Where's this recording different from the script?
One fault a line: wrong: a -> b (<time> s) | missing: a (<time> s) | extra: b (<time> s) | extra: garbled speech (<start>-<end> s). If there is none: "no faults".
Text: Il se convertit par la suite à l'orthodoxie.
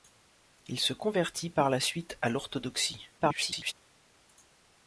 extra: garbled speech (3.2-3.7 s)